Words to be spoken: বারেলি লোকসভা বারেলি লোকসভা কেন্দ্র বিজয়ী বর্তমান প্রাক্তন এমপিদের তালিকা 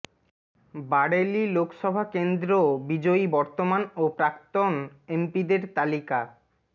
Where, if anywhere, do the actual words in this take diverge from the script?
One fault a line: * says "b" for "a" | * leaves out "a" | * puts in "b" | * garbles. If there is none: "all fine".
* leaves out "বারেলি লোকসভা"
* puts in "ও"